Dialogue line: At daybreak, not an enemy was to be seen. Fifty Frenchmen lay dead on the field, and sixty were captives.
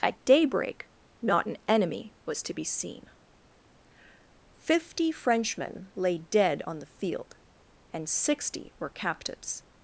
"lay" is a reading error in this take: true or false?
false